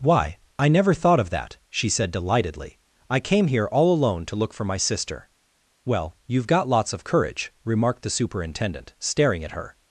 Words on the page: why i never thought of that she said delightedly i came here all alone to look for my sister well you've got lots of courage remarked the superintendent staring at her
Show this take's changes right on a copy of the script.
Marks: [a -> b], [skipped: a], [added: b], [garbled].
why i never thought of that she said delightedly i came here all alone to look for my sister well you've got lots of courage remarked the superintendent staring at her